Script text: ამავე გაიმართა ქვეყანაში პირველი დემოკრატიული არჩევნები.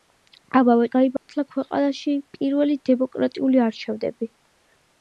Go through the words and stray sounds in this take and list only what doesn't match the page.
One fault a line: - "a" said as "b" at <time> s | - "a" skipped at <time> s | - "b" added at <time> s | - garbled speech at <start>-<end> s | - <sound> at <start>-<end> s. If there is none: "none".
- dropout at 1.2-1.3 s